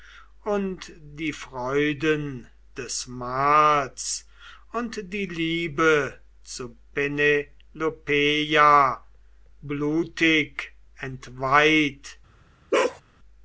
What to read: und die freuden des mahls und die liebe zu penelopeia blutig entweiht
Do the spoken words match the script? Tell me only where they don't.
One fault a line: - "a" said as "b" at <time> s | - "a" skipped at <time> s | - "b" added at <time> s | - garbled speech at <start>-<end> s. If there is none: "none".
none